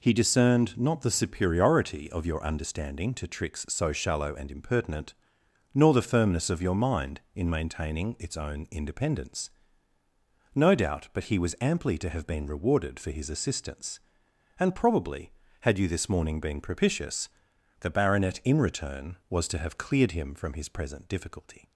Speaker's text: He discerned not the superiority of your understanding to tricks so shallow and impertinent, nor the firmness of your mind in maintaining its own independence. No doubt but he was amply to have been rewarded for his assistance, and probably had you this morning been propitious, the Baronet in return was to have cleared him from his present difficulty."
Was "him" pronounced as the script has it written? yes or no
yes